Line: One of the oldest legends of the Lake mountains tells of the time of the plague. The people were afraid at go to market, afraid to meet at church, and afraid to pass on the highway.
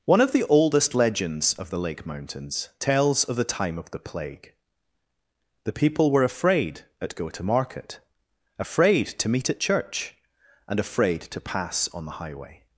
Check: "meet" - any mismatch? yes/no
no